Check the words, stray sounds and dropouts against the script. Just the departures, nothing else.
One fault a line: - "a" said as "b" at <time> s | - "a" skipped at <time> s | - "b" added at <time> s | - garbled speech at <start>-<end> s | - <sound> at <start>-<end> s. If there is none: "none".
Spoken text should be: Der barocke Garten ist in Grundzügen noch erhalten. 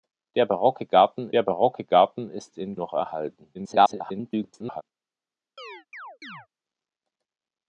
- "der barocke Garten" added at 1.3 s
- "Grundzügen" skipped at 2.8 s
- garbled speech at 3.5-4.8 s
- chirp at 5.6-6.5 s